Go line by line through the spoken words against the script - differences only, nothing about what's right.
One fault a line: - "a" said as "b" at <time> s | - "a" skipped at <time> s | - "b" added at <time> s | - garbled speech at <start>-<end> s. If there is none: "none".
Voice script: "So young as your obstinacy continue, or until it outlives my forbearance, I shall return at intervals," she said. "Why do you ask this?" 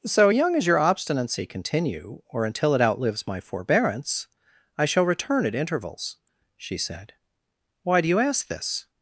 none